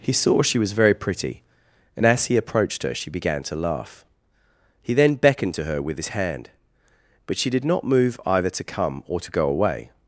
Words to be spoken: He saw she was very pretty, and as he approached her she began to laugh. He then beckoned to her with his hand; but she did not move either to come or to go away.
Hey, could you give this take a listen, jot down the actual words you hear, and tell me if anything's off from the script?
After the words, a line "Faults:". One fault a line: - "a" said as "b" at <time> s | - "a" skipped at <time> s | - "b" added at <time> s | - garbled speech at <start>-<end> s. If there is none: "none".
He saw she was very pretty, and as he approached her she began to laugh. He then beckoned to her with his hand; but she did not move either to come or to go away.
Faults:
none